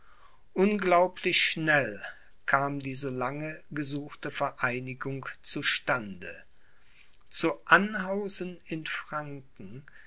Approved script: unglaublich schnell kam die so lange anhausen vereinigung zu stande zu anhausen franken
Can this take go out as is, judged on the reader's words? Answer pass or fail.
fail